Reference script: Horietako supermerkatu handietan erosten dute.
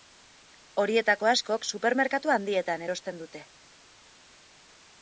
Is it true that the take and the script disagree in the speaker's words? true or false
true